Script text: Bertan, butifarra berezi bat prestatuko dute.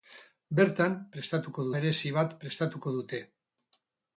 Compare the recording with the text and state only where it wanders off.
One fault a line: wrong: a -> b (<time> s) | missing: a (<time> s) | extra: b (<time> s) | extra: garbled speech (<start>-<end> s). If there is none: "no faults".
wrong: butifarra -> prestatuko (1.1 s)